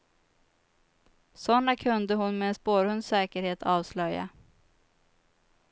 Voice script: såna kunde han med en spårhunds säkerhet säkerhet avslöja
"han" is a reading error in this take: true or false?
true